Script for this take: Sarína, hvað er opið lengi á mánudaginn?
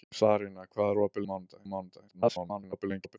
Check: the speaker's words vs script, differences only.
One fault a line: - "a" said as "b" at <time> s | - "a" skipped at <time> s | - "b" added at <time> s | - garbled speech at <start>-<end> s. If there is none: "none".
- "lengi" said as "mánudaginn" at 1.2 s
- garbled speech at 2.1-3.2 s